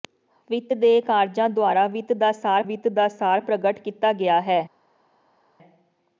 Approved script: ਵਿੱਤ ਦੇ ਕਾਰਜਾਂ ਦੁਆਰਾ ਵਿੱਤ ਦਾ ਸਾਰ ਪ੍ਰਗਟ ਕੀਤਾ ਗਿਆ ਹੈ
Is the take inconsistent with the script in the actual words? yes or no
yes